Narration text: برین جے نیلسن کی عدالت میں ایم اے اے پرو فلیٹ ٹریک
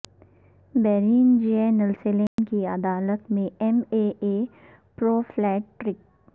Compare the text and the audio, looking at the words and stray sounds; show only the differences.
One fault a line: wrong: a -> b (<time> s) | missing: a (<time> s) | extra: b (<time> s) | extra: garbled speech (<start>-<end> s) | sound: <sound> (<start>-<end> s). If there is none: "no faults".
sound: dropout (2.3-2.4 s)